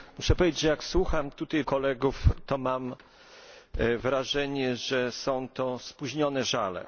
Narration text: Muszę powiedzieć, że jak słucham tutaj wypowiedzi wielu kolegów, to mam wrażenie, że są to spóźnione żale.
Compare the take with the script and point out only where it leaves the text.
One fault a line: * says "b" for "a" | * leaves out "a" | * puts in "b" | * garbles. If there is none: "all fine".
* leaves out "wypowiedzi wielu"